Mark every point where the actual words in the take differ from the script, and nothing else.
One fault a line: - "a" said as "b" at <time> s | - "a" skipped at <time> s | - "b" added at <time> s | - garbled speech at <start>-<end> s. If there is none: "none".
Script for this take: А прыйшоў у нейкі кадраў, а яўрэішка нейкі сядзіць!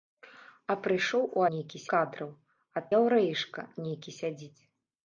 none